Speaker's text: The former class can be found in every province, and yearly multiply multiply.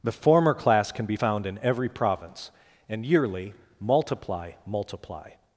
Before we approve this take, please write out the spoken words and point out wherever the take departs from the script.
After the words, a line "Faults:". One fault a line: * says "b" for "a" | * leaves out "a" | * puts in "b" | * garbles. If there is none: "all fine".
The former class can be found in every province, and yearly multiply multiply.
Faults:
all fine